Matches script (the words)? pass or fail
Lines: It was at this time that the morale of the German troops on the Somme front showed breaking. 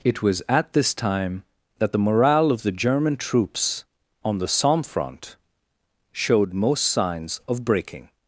fail